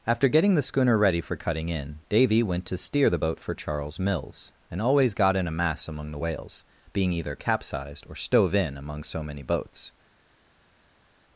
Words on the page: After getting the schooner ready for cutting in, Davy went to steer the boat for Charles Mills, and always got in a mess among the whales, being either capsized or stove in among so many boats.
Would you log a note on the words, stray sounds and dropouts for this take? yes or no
yes